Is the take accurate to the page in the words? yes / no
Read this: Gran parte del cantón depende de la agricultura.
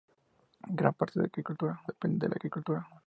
no